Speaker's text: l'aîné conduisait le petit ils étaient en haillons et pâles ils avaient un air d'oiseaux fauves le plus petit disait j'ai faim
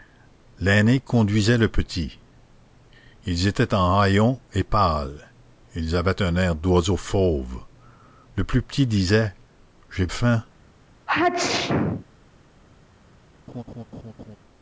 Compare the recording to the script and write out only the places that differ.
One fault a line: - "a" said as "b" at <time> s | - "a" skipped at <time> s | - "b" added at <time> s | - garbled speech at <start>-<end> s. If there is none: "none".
none